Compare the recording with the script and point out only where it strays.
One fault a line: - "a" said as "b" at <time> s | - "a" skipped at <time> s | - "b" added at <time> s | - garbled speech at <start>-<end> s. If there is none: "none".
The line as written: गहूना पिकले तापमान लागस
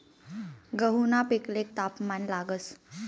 none